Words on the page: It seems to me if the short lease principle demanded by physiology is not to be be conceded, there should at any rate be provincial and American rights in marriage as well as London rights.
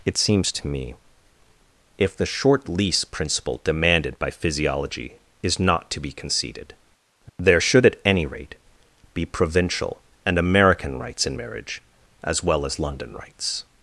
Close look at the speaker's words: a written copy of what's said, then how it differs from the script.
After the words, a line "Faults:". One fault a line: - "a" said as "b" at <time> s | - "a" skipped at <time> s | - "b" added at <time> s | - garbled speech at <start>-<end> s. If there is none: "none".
It seems to me if the short lease principle demanded by physiology is not to be conceded, there should at any rate be provincial and American rights in marriage as well as London rights.
Faults:
- "be" skipped at 6.1 s